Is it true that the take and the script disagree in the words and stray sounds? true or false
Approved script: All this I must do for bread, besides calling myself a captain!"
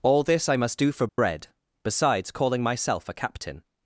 true